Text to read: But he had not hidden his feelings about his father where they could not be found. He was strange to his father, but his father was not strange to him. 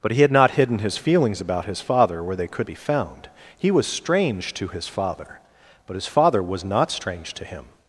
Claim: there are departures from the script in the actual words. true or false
true